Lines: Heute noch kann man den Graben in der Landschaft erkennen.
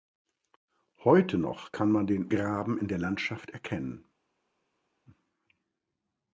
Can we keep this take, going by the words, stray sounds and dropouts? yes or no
yes